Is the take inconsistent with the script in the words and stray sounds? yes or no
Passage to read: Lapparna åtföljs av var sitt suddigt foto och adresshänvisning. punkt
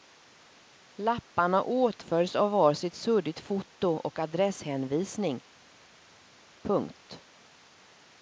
no